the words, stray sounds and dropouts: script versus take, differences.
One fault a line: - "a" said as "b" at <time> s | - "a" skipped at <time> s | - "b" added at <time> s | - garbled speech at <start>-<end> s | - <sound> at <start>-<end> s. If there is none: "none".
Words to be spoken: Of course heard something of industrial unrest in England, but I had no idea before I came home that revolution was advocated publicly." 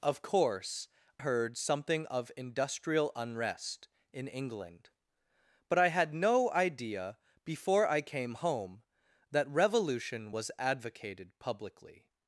none